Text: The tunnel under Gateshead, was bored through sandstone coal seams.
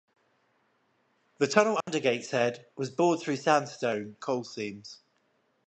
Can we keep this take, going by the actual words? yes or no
yes